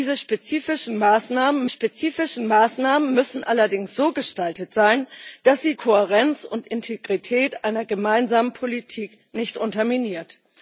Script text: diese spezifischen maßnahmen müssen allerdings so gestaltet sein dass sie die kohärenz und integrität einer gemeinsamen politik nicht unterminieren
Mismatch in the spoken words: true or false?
true